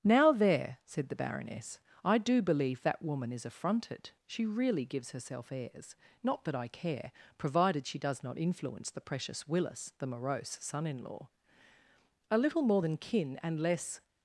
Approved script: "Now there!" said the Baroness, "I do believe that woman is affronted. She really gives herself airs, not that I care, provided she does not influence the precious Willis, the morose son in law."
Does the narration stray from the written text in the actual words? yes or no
yes